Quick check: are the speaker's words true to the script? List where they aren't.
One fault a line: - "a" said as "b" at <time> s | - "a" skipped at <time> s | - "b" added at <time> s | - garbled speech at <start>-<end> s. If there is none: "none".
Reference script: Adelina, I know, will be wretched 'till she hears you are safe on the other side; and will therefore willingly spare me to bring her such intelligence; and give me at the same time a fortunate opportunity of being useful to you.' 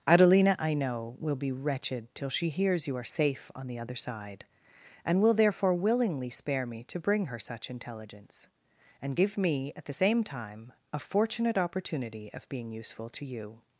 none